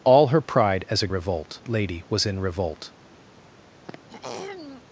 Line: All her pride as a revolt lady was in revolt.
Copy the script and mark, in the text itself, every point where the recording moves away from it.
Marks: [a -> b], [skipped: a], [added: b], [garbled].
All her pride as a revolt lady was in revolt.